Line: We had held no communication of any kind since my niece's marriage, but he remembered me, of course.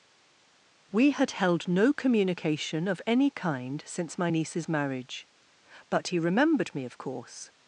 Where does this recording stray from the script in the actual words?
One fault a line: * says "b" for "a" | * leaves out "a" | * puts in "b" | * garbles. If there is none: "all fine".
all fine